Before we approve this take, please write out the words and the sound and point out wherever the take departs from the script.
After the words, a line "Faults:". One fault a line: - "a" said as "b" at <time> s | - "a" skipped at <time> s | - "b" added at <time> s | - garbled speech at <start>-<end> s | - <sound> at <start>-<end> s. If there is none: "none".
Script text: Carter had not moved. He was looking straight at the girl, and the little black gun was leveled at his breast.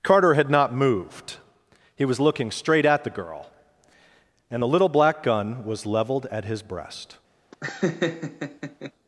Carter had not moved. He was looking straight at the girl, and the little black gun was leveled at his breast.
Faults:
- laugh at 7.5-8.9 s